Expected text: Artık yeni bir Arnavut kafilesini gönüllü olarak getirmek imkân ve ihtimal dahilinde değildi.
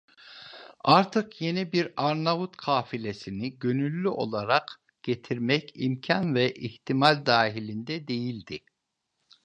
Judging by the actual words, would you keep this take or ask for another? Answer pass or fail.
pass